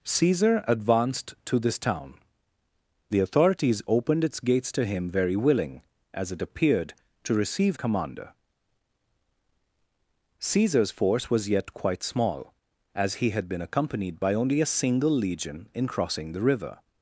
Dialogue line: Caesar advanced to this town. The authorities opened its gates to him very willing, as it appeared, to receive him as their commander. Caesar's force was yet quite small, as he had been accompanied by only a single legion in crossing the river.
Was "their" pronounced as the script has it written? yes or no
no